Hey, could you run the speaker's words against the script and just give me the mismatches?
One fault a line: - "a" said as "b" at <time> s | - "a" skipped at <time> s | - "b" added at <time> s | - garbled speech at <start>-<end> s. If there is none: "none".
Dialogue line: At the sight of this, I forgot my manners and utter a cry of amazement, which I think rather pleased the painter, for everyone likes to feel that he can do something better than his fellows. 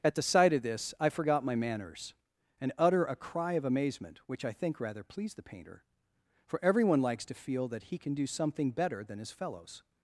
none